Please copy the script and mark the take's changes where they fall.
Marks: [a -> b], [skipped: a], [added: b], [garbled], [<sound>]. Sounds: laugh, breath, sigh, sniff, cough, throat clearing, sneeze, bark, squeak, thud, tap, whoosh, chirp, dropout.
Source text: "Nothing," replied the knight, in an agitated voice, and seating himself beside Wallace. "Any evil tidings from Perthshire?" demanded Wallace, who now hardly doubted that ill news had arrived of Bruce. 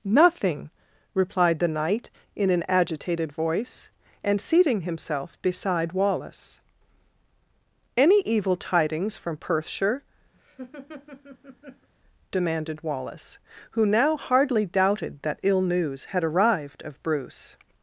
"Nothing," replied the knight, in an agitated voice, and seating himself beside Wallace. "Any evil tidings from Perthshire?" [laugh] demanded Wallace, who now hardly doubted that ill news had arrived of Bruce.